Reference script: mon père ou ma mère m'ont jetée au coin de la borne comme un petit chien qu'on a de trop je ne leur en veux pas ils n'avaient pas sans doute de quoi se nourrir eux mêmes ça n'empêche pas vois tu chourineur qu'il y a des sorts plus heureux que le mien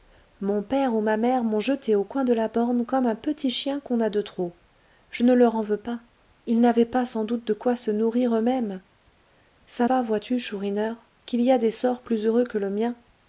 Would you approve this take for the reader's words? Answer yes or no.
no